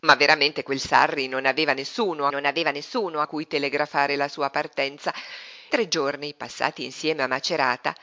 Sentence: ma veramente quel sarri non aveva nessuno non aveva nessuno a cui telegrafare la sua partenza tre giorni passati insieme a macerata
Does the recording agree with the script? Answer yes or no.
yes